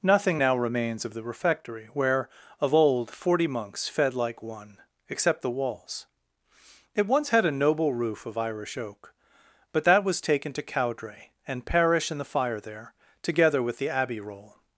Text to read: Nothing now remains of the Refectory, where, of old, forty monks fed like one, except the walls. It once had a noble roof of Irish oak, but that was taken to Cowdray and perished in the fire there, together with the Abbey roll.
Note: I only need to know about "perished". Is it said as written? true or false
false